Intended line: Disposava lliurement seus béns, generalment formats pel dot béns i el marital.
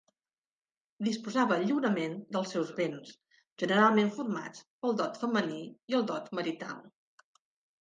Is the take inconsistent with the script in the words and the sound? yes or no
yes